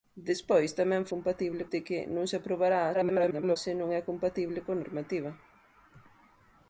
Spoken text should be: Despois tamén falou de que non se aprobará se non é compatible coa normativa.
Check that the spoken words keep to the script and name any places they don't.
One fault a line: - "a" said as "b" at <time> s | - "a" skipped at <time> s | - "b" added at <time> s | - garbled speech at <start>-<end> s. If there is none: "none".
- "falou" said as "compatible" at 1.1 s
- garbled speech at 2.9-3.6 s